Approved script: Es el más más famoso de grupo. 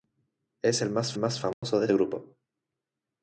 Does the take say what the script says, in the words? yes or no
yes